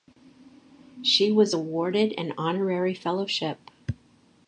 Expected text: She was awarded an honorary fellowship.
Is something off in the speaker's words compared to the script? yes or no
no